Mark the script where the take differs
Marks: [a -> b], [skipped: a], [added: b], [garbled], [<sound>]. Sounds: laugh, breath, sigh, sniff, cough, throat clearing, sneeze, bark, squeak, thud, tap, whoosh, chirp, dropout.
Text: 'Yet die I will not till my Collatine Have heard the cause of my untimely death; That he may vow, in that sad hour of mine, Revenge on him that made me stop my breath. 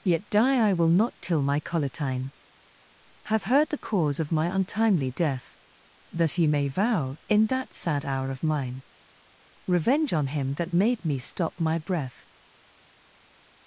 'Yet die I will not till my Collatine Have heard the cause of my untimely death; That he may vow, in that sad hour of mine, Revenge on him that made me stop my breath.